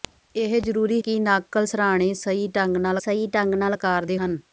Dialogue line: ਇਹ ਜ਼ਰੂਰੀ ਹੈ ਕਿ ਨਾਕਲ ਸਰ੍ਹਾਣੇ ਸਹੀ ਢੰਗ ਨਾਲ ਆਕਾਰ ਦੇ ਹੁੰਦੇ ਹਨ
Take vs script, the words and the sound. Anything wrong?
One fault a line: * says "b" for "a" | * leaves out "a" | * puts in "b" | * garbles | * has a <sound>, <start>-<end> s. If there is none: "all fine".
* leaves out "ਹੈ"
* puts in "ਸਹੀ ਢੰਗ ਨਾਲ"
* leaves out "ਹੁੰਦੇ"